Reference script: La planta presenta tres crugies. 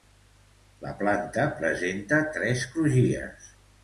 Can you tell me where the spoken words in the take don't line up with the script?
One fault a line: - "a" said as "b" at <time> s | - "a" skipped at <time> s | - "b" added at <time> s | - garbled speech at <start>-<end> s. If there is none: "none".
none